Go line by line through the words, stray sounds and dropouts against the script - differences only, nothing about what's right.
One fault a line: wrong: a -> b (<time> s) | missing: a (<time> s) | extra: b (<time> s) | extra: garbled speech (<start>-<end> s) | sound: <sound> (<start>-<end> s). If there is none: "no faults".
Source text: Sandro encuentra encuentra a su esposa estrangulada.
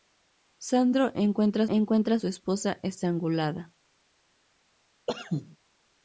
sound: cough (5.1-5.6 s)